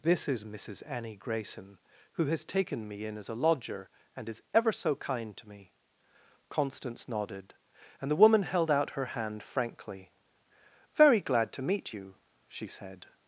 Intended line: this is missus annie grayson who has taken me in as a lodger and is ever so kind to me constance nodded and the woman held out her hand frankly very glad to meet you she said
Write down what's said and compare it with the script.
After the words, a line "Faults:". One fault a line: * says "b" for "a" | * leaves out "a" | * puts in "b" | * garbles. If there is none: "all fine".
this is missus annie grayson who has taken me in as a lodger and is ever so kind to me constance nodded and the woman held out her hand frankly very glad to meet you she said
Faults:
all fine